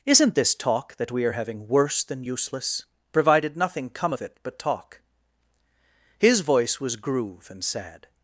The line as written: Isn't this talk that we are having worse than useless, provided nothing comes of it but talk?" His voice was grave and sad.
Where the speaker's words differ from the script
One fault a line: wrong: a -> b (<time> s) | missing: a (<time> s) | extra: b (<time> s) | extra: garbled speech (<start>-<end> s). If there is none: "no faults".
wrong: comes -> come (3.9 s)
wrong: grave -> groove (6.9 s)